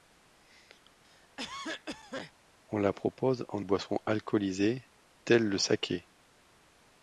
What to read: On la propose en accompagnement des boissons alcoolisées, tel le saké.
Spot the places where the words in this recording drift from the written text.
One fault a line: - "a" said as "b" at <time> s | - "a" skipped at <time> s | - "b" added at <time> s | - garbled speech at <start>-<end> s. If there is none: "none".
- "accompagnement des" skipped at 3.7 s